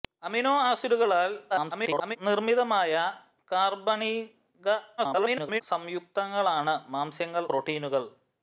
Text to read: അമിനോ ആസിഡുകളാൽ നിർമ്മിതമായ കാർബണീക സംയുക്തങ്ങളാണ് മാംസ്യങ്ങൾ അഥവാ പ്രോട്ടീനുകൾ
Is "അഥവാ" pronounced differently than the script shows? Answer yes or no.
yes